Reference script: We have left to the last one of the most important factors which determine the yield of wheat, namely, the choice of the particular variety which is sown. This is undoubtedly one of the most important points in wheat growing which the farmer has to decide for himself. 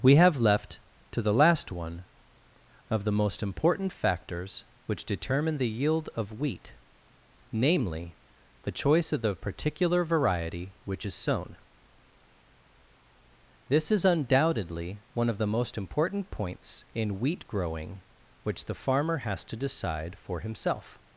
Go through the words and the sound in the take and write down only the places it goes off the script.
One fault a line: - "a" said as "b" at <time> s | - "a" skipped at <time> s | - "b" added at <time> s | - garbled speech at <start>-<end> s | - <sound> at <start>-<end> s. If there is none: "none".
none